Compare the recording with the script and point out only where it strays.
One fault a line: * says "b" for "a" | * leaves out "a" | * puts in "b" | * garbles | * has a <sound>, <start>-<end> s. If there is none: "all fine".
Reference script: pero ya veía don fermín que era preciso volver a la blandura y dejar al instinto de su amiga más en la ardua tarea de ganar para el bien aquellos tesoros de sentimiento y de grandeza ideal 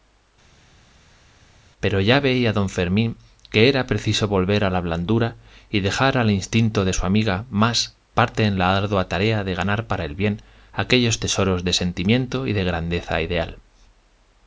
* puts in "parte"